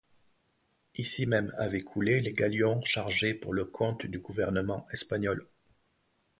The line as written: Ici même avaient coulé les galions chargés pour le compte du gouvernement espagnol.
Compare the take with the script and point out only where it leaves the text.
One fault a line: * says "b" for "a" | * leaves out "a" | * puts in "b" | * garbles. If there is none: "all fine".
all fine